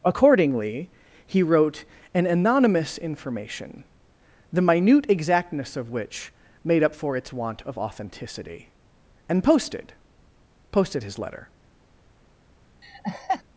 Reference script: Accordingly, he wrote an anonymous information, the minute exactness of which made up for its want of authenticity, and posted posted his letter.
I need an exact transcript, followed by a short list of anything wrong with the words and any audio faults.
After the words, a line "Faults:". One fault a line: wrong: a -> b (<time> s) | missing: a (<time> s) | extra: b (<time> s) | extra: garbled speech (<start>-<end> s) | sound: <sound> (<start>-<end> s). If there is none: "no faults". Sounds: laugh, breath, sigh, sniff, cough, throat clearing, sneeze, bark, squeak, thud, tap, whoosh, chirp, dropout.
Accordingly, he wrote an anonymous information, the minute exactness of which made up for its want of authenticity, and posted posted his letter.
Faults:
sound: laugh (12.8-13.4 s)